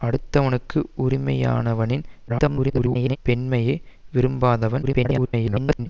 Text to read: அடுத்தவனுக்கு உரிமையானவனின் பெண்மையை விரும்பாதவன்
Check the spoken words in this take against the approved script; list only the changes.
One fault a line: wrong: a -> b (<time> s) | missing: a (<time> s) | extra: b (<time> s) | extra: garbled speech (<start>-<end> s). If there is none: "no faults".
extra: garbled speech (2.3-3.2 s)
extra: garbled speech (4.8-5.9 s)